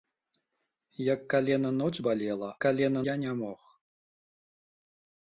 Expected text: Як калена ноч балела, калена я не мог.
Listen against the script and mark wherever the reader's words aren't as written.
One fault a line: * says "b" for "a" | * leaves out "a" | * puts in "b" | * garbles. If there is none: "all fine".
all fine